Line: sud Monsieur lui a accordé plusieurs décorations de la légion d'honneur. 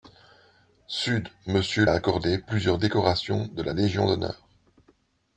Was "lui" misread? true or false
true